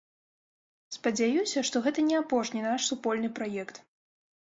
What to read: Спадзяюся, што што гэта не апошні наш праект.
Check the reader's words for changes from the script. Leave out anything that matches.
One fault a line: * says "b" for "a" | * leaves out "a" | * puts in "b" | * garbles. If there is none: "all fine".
* leaves out "што"
* puts in "супольны"